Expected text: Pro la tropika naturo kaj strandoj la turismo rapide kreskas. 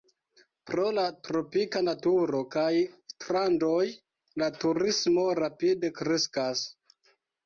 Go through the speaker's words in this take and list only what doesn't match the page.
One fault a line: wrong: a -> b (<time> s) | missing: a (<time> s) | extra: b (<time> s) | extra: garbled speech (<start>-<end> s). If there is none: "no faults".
no faults